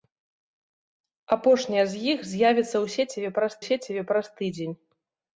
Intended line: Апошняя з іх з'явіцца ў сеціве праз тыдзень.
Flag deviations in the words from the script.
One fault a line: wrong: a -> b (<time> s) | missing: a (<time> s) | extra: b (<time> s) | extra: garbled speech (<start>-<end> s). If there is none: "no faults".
extra: сеціве праз (3.7 s)